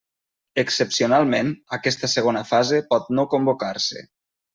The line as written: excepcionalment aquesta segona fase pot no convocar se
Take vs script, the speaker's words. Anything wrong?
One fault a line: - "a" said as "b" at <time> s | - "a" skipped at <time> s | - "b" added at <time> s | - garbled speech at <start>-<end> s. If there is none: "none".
none